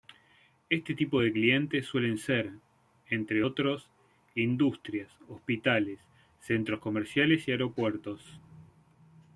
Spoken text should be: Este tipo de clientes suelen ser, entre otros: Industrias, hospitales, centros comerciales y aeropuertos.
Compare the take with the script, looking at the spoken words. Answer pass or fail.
pass